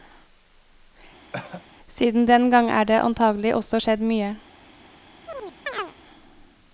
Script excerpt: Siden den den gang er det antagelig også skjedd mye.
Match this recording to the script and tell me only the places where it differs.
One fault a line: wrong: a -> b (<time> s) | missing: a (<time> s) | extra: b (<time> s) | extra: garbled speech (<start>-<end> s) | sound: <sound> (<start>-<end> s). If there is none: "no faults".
sound: cough (1.3-1.6 s)
missing: den (2.5 s)
sound: chirp (5.3-6.0 s)